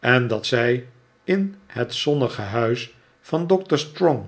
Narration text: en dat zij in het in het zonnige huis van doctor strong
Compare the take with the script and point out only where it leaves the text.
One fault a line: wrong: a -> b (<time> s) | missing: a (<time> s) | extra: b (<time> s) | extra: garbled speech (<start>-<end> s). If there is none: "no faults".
missing: in het (1.9 s)